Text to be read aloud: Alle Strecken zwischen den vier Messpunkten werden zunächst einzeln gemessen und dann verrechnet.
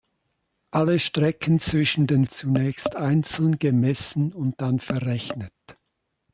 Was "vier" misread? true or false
true